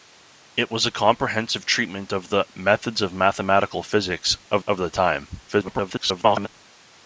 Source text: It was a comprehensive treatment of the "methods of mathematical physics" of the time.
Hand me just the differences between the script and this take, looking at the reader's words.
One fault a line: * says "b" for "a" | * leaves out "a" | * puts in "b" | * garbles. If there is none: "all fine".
* puts in "of"
* garbles